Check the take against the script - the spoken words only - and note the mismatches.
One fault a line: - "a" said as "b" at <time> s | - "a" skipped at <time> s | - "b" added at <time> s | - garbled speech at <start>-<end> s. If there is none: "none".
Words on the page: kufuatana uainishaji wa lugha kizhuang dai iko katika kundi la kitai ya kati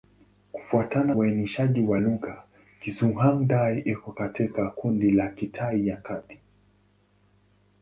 none